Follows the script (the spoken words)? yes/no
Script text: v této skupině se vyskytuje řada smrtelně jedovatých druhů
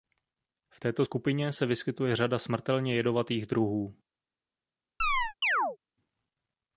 yes